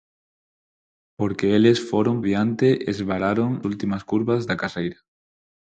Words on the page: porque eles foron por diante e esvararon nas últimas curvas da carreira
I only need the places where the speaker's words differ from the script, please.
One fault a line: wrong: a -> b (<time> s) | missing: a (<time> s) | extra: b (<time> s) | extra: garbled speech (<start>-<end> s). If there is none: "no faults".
missing: por (2.2 s)
missing: nas (3.5 s)